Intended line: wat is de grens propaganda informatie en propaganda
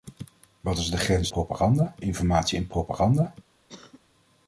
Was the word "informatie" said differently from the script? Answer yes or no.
no